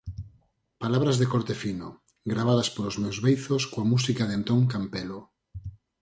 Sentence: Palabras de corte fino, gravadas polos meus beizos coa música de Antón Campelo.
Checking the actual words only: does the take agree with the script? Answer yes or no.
yes